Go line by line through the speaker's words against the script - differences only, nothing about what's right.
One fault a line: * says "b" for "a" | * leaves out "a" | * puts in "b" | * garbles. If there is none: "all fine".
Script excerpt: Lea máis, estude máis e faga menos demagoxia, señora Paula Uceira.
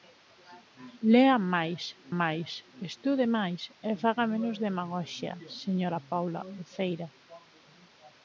* puts in "máis"